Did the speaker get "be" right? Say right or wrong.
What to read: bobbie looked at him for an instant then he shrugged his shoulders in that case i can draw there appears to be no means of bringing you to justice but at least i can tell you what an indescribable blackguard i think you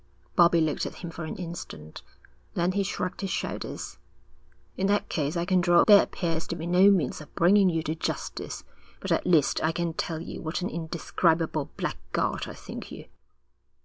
right